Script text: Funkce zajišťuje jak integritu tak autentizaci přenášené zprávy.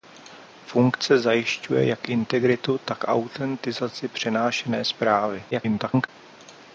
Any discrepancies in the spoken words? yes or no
yes